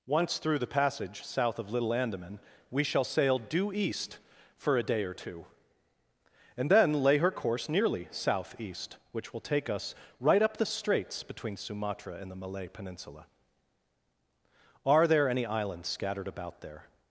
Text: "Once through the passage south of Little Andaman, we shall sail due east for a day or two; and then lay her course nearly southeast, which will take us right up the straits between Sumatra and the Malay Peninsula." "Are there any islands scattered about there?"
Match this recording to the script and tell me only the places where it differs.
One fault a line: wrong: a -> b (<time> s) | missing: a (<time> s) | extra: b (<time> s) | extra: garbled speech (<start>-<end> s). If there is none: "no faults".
no faults